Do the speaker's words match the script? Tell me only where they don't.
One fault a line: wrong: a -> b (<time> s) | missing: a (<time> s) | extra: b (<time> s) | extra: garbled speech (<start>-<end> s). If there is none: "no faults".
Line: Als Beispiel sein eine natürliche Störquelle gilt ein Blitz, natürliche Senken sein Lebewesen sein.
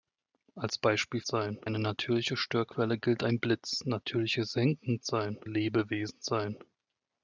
no faults